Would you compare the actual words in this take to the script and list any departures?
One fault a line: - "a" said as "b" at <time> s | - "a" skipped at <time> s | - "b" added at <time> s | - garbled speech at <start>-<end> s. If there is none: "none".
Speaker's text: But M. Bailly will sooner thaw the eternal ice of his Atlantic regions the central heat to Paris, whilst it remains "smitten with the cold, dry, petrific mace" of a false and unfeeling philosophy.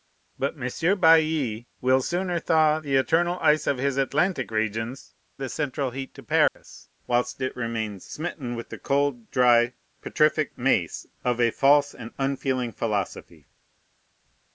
none